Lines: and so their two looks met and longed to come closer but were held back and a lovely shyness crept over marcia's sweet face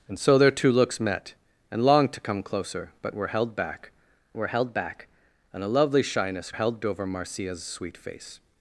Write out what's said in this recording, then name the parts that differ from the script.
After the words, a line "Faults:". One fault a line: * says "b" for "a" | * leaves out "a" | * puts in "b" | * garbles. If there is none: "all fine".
and so their two looks met and longed to come closer but were held back were held back and a lovely shyness held over marcia's sweet face
Faults:
* puts in "were held back"
* says "held" for "crept"